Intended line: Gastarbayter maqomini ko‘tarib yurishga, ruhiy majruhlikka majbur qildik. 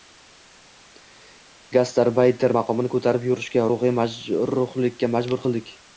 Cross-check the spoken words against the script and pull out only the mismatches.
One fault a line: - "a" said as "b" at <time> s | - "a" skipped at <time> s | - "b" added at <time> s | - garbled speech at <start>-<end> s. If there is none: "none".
none